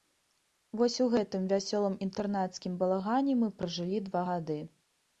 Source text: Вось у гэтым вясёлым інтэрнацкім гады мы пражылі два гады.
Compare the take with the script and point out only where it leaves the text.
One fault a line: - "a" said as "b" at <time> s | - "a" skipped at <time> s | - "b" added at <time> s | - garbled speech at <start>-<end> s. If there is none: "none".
- "гады" said as "балагане" at 2.8 s